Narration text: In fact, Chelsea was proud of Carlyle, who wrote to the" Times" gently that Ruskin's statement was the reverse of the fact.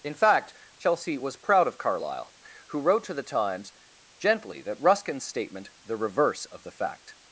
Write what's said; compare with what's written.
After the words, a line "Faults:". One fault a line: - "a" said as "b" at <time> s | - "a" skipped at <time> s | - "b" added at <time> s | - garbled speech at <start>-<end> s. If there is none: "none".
In fact, Chelsea was proud of Carlyle, who wrote to the" Times" gently that Ruskin's statement the reverse of the fact.
Faults:
- "was" skipped at 5.7 s